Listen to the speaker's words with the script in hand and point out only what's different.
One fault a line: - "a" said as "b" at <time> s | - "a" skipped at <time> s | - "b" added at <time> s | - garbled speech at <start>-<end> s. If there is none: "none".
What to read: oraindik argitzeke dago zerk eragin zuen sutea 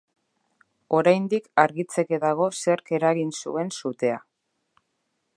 none